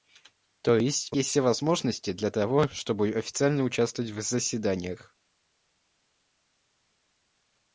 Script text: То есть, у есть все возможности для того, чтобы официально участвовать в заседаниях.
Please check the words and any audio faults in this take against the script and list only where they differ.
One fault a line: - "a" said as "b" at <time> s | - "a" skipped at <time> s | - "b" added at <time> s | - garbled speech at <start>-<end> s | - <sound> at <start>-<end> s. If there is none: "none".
none